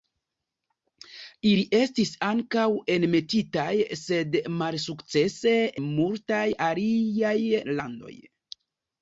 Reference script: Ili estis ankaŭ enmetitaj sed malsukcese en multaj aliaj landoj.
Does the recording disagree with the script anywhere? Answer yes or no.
yes